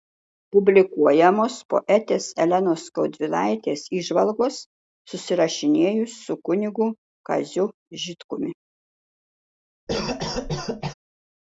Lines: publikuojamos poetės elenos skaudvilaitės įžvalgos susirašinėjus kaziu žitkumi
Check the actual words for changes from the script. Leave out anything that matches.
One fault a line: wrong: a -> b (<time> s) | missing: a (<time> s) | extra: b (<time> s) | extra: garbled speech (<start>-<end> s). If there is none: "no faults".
extra: su kunigu (6.3 s)